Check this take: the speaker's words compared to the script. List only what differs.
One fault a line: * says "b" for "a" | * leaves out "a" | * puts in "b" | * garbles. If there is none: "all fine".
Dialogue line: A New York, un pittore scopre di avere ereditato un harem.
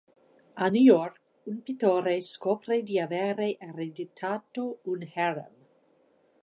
all fine